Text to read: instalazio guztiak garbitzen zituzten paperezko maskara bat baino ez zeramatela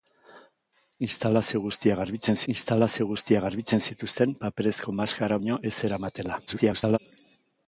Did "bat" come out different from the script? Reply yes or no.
yes